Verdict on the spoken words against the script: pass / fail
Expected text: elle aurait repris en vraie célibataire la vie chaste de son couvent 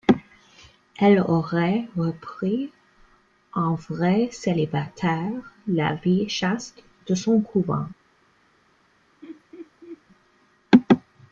pass